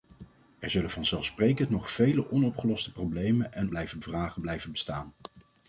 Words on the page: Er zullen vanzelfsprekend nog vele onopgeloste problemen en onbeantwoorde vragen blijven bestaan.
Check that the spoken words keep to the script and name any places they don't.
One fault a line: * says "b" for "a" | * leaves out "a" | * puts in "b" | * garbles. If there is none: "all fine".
* says "blijven" for "onbeantwoorde"